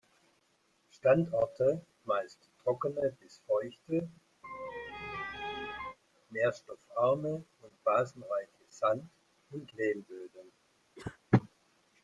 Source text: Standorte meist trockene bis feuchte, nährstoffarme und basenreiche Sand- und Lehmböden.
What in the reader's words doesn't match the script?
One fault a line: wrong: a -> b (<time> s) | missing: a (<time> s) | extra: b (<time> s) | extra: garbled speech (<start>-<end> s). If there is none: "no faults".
no faults